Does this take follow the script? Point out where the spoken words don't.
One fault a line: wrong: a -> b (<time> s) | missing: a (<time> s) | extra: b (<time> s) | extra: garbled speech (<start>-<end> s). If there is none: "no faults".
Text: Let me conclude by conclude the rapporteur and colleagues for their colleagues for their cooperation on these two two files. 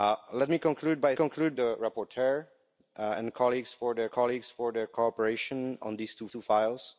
no faults